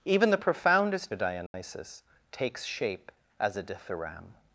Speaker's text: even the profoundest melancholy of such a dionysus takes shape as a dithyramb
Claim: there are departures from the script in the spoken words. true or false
true